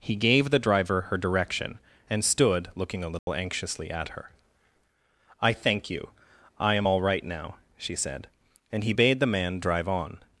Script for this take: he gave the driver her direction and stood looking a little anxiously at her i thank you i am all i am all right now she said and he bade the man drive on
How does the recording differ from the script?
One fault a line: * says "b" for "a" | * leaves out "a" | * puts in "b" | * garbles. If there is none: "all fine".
* leaves out "i am all"